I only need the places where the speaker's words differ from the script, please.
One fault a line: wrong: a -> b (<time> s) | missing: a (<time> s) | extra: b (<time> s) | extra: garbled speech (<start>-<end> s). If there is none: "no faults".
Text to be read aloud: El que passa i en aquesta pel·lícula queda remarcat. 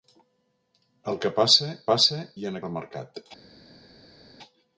extra: passa (1.9 s)
missing: aquesta pel·lícula queda (2.6 s)